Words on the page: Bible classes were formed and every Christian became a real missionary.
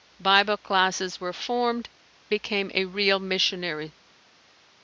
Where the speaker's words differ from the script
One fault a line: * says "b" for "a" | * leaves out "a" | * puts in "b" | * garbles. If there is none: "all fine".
* leaves out "and every Christian"